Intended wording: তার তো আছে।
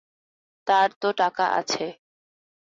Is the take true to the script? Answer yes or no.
no